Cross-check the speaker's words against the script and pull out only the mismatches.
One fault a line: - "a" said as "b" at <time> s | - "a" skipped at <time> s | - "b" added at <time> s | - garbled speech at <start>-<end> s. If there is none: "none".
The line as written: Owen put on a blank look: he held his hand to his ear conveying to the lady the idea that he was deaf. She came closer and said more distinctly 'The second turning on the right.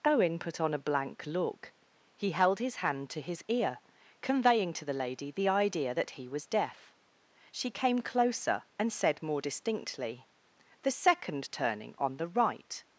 none